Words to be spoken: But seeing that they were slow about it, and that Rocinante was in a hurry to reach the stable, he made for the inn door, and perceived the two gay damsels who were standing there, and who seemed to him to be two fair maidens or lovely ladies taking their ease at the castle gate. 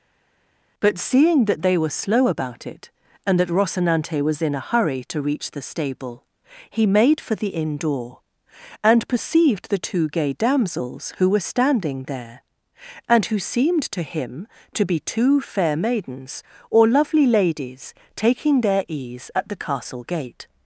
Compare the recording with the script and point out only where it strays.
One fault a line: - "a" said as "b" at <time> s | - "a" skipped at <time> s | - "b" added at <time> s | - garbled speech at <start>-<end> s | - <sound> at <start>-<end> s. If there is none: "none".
none